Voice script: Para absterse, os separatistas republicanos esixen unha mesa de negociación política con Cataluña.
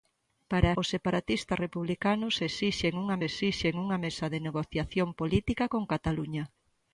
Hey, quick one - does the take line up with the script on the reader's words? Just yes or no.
no